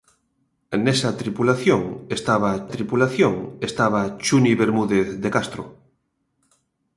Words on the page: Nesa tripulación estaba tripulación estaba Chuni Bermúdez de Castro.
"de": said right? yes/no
yes